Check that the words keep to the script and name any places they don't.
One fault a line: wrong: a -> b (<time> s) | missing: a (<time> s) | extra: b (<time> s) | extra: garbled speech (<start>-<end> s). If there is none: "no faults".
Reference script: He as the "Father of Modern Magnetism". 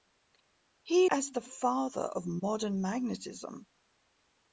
no faults